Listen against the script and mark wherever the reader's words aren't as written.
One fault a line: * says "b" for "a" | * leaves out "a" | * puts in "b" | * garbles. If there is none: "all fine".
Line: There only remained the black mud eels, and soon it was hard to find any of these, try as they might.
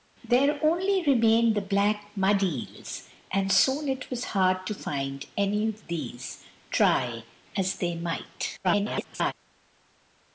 * garbles